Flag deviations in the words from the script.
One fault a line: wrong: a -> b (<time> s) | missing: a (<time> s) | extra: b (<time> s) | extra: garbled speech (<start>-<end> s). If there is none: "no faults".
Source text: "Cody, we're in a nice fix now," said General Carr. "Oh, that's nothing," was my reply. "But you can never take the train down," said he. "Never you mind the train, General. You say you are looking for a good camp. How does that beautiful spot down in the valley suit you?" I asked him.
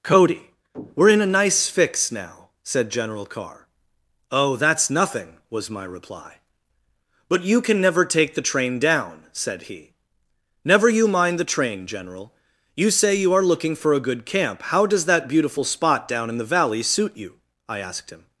no faults